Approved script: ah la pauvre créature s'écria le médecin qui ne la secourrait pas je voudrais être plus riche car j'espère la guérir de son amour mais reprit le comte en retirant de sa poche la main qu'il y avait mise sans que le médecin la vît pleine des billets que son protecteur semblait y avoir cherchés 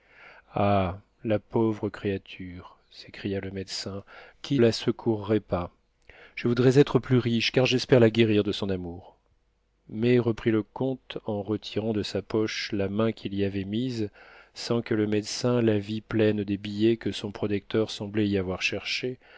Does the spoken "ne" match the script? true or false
false